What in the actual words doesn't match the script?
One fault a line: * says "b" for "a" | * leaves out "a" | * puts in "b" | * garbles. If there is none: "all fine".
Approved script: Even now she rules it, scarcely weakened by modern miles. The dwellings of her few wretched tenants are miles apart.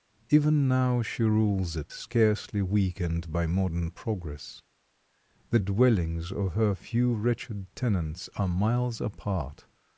* says "progress" for "miles"